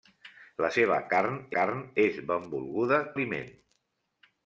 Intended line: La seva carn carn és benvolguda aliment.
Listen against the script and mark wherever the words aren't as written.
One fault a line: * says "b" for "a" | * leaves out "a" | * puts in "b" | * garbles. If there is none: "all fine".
all fine